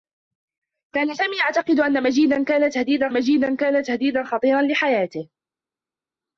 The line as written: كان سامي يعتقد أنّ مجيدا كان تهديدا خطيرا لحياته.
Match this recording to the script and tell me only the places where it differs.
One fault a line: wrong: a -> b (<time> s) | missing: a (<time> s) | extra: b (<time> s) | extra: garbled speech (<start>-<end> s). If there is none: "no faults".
extra: مجيدا كان تهديدا (3.1 s)